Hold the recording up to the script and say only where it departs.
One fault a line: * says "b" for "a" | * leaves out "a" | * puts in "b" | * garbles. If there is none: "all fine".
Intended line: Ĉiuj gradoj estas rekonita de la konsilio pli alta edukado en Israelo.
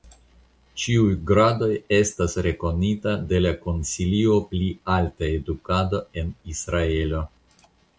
all fine